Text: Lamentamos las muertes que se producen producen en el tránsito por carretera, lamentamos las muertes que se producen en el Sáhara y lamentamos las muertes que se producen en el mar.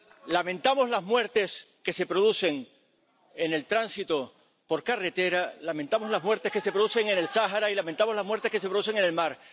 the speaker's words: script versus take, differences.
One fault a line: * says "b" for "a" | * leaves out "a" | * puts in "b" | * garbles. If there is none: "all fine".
* leaves out "producen"